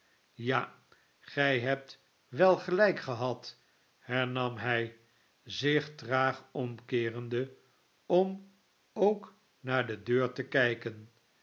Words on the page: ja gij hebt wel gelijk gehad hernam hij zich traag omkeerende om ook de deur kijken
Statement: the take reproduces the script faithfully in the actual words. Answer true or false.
false